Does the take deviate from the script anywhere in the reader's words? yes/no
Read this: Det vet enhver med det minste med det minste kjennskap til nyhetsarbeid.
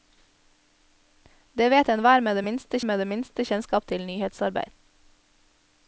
no